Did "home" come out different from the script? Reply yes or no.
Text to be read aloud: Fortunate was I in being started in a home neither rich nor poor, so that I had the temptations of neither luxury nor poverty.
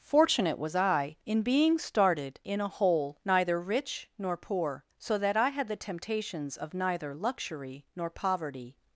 yes